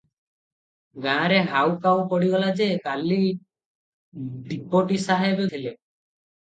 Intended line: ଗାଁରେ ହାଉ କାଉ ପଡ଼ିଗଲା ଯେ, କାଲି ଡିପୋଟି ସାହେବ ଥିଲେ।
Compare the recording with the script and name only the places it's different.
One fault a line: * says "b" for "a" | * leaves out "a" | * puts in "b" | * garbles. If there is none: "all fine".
all fine